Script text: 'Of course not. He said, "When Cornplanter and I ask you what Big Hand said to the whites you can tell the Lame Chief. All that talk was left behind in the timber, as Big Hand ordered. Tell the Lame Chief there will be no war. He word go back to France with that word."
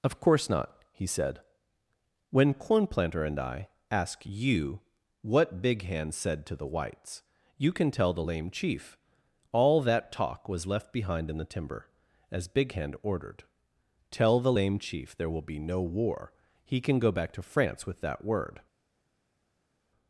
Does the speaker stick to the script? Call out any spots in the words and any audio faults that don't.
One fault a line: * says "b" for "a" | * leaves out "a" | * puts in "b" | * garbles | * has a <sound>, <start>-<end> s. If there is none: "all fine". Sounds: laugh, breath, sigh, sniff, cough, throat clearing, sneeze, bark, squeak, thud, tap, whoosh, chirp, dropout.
* says "can" for "word"